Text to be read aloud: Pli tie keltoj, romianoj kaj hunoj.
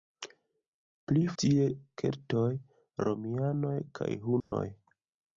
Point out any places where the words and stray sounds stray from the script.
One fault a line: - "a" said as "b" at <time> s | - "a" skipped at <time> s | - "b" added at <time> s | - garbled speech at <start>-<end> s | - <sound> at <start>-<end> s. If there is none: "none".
- dropout at 4.4-4.5 s